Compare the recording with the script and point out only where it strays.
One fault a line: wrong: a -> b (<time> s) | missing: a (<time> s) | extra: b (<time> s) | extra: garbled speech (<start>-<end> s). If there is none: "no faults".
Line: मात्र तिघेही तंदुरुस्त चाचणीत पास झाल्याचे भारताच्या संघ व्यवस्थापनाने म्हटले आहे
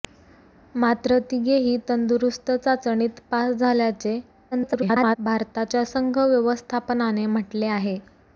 extra: garbled speech (4.5-5.2 s)